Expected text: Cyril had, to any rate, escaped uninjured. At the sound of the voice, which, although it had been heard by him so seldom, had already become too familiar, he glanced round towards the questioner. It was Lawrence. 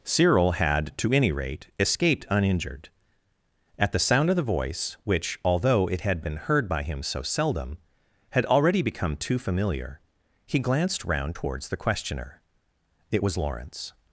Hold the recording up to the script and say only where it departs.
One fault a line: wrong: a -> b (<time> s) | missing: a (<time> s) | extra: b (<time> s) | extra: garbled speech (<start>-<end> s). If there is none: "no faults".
no faults